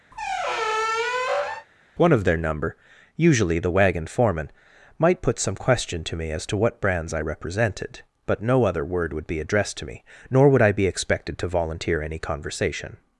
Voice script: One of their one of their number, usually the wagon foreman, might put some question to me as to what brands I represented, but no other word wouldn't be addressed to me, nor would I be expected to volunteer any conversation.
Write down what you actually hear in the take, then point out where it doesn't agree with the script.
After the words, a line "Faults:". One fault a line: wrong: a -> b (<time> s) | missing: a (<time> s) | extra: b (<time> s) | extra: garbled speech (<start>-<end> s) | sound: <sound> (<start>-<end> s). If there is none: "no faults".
One of their number, usually the wagon foreman, might put some question to me as to what brands I represented, but no other word would be addressed to me, nor would I be expected to volunteer any conversation.
Faults:
sound: squeak (0.1-1.7 s)
missing: one of their (2.4 s)
wrong: wouldn't -> would (9.1 s)